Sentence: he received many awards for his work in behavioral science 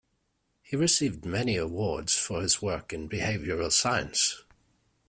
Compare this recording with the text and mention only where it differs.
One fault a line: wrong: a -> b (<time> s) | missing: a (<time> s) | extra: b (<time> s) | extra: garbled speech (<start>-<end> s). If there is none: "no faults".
no faults